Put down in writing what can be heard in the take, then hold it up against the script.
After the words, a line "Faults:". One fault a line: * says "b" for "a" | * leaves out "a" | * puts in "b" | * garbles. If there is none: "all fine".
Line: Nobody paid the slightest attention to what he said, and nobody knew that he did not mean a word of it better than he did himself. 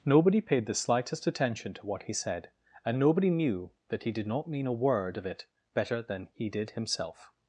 Nobody paid the slightest attention to what he said, and nobody knew that he did not mean a word of it better than he did himself.
Faults:
all fine